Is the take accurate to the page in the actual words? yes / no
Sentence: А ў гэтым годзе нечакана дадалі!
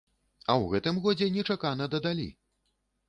yes